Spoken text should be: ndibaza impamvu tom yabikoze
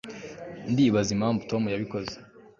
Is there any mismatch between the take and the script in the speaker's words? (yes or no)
no